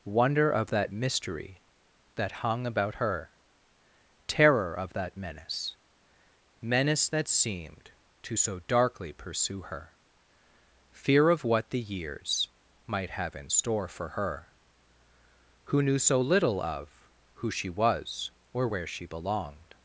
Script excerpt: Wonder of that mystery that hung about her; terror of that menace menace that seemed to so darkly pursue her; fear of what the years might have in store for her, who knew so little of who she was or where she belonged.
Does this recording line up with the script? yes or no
yes